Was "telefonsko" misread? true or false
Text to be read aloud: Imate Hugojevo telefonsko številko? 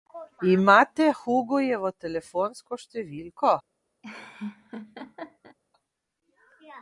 false